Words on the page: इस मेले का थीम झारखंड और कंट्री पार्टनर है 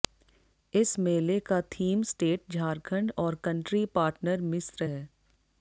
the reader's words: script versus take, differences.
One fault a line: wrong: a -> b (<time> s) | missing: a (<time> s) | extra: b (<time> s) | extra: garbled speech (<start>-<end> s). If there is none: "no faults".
extra: स्टेट (2.1 s)
extra: मिस्र (4.4 s)